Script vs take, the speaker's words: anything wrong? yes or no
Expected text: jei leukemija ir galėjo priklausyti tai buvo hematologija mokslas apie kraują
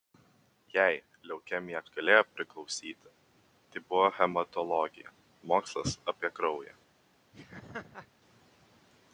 no